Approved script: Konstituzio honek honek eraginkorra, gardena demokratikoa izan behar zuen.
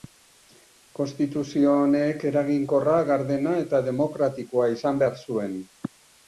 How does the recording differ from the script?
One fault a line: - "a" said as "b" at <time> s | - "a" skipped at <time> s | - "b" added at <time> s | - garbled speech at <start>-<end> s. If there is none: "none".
- "honek" skipped at 2.2 s
- "eta" added at 3.7 s